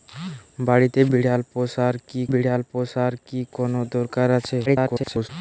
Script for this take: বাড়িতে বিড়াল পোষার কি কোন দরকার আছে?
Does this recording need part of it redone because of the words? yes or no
yes